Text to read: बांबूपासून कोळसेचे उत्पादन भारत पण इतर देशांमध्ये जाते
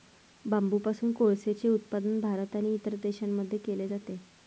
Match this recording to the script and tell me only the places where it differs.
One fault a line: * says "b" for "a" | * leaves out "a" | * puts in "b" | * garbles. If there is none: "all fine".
* says "आणि" for "पण"
* puts in "केले"